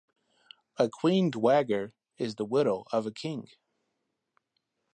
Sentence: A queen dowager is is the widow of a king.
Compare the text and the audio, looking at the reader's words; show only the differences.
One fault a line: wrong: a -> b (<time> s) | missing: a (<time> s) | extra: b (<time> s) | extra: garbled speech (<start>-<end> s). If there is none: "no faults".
missing: is (2.4 s)